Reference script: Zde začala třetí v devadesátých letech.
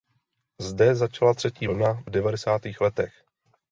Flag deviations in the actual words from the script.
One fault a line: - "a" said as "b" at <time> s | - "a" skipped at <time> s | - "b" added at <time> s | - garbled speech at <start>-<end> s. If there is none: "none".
- "vlna" added at 1.6 s